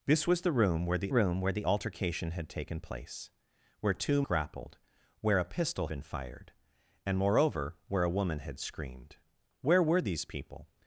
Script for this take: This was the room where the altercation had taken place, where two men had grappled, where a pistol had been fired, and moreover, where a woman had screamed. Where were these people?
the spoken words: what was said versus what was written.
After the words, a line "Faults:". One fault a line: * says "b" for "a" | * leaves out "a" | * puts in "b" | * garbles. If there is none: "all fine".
This was the room where the room where the altercation had taken place, where two grappled, where a pistol been fired, and moreover, where a woman had screamed. Where were these people?
Faults:
* puts in "room where the"
* leaves out "men had"
* leaves out "had"